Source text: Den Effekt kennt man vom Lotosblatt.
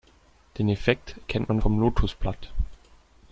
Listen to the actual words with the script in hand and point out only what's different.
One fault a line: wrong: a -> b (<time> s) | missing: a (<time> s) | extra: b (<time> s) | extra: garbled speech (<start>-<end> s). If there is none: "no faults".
no faults